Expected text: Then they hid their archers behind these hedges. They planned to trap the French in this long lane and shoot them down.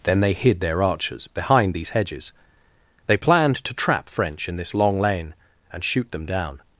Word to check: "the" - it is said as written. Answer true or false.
false